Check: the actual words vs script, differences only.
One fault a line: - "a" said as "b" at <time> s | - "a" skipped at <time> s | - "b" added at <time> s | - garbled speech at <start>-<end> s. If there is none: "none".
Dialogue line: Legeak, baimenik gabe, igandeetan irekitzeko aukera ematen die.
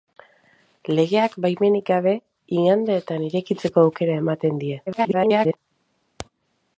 - garbled speech at 4.9-5.6 s